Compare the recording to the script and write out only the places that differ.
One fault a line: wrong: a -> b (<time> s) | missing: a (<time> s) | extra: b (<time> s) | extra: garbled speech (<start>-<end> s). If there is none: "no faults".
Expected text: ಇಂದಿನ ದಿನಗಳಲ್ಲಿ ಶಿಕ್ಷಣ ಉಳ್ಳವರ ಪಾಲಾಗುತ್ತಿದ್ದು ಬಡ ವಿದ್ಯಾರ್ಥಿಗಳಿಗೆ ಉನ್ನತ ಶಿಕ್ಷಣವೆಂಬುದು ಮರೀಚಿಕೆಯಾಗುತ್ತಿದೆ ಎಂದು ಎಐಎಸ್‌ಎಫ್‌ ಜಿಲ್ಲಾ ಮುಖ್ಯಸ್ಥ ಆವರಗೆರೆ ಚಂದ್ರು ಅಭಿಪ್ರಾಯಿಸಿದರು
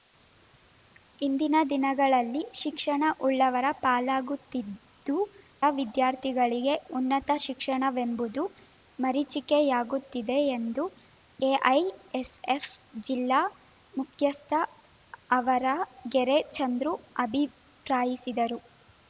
missing: ಬಡ (5.2 s)